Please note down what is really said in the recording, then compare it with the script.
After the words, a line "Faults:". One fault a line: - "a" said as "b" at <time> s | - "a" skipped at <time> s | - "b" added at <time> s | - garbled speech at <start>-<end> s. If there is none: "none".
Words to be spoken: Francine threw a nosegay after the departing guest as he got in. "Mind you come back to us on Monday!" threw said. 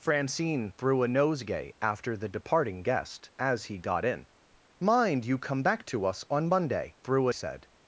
Francine threw a nosegay after the departing guest as he got in. "Mind you come back to us on Monday!" threw said.
Faults:
none